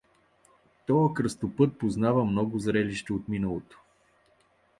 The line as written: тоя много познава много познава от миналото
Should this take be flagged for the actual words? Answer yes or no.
yes